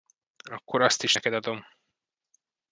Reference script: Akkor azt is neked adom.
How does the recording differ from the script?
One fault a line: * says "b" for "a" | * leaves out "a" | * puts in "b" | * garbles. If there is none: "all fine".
all fine